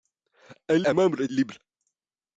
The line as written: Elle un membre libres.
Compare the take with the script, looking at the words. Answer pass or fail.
pass